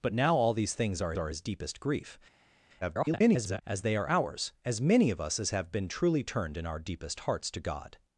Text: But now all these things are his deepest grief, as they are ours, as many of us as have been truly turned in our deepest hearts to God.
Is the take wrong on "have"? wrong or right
right